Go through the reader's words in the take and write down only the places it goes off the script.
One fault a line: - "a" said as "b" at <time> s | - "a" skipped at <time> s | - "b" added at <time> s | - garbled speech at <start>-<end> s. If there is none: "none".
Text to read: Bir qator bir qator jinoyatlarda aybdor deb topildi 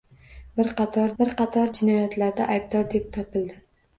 none